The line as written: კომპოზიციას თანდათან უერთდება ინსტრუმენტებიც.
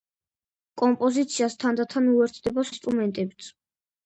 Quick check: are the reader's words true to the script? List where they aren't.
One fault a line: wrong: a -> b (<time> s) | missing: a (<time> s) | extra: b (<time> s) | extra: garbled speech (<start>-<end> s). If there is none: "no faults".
no faults